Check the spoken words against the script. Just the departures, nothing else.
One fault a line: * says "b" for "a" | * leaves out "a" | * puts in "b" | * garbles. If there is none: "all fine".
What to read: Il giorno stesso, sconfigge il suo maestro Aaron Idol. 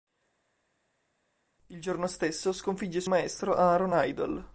* leaves out "suo"